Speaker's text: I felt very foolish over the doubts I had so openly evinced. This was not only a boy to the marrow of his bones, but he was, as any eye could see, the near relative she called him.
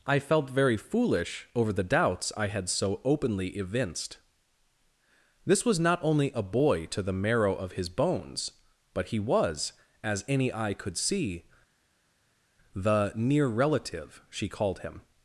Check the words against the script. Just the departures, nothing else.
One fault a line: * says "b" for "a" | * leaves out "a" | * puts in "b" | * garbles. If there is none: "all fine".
all fine